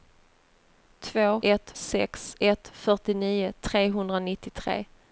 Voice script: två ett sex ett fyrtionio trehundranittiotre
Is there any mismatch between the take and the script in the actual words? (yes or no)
no